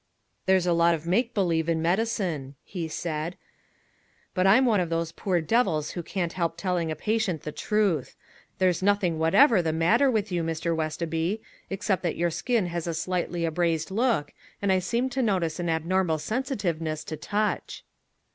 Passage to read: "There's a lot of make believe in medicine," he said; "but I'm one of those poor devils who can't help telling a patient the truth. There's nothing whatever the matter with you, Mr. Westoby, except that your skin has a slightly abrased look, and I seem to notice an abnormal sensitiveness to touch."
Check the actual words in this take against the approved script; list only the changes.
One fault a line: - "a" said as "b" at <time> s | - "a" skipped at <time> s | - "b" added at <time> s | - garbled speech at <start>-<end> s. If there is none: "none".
none